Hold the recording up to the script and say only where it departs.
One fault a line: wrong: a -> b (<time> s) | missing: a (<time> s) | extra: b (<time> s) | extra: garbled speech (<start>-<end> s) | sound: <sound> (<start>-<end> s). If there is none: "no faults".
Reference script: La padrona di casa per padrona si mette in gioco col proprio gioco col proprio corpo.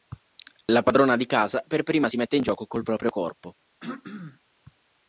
wrong: padrona -> prima (1.8 s)
missing: gioco col proprio (3.1 s)
sound: throat clearing (3.8-4.4 s)